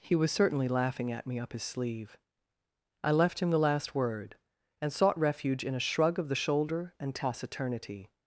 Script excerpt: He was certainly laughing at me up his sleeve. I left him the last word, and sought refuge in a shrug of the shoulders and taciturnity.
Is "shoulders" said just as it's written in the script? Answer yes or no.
no